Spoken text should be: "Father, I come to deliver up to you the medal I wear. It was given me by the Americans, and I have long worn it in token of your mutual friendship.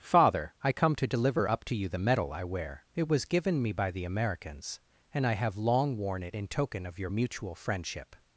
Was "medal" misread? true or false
false